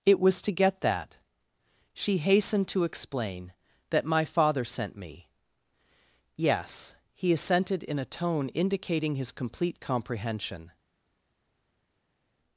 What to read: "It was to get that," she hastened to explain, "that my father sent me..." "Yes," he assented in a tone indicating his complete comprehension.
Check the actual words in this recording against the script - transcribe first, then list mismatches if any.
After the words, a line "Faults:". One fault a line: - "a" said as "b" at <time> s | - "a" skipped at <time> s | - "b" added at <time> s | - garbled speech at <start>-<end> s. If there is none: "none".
"It was to get that," she hastened to explain, "that my father sent me..." "Yes," he assented in a tone indicating his complete comprehension.
Faults:
none